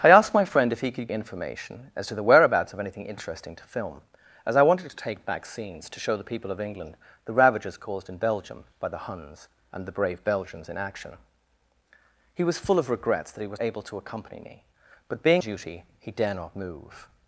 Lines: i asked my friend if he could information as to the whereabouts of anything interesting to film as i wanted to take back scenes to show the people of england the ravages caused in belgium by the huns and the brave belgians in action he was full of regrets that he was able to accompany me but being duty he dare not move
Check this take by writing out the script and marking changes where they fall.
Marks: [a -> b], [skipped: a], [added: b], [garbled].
i asked my friend if he could information as to the whereabouts of anything interesting to film as i wanted to take back scenes to show the people of england the ravages caused in belgium by the huns and the brave belgians in action he was full of regrets that he was able to accompany me but being duty he dare not move